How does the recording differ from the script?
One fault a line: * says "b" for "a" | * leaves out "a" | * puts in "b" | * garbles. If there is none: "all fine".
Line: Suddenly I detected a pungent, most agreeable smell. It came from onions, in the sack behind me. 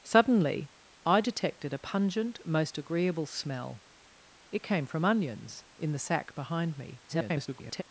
* garbles